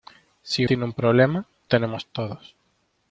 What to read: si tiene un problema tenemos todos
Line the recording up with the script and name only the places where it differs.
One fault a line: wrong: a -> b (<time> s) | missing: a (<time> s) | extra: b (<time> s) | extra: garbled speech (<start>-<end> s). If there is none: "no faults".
no faults